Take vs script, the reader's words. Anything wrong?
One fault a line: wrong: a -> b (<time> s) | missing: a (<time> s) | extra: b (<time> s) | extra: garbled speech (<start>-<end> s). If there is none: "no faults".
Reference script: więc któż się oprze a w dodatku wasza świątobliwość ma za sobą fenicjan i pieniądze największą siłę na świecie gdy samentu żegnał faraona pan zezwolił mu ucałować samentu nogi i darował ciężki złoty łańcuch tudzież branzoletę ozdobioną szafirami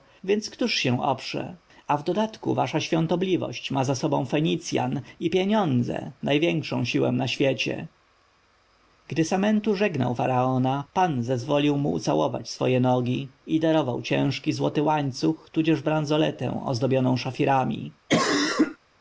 wrong: samentu -> swoje (12.5 s)